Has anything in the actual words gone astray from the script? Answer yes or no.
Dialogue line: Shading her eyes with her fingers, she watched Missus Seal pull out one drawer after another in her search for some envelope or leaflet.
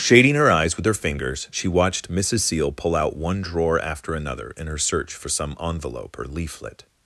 no